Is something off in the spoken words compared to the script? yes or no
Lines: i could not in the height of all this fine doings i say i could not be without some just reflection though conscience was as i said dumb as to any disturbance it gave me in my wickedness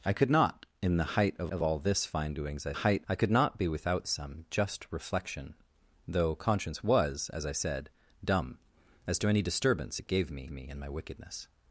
yes